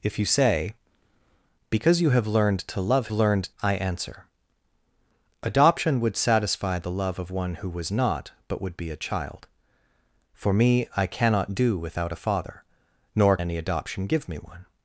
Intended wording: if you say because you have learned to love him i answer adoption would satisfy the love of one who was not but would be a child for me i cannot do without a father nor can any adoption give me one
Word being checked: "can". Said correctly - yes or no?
no